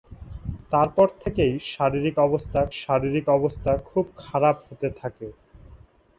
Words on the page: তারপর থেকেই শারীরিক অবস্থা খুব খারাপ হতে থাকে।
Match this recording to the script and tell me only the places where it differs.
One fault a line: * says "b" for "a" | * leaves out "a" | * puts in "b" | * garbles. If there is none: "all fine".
* puts in "শারীরিক অবস্থা"